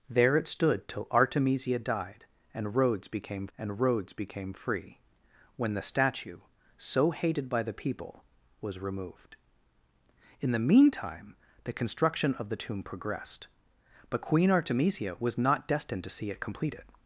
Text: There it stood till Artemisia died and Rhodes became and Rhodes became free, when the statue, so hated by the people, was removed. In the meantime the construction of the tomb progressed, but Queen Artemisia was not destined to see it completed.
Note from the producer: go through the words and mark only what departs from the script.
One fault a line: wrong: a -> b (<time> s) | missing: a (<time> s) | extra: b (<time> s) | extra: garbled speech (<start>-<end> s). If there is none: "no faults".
no faults